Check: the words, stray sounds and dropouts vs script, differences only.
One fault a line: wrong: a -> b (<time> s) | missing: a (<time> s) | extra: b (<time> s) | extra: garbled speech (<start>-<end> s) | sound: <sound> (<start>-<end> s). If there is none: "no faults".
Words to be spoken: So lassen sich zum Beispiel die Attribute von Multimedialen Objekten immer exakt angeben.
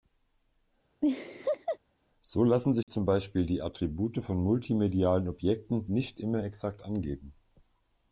sound: laugh (1.0-1.8 s)
sound: dropout (2.8-2.9 s)
extra: nicht (5.9 s)